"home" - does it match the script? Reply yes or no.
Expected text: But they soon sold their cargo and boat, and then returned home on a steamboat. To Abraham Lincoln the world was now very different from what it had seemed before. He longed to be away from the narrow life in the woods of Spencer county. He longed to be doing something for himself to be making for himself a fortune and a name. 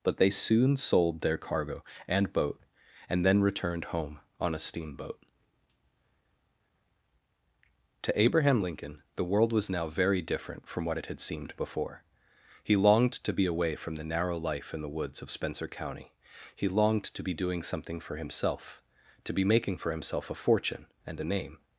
yes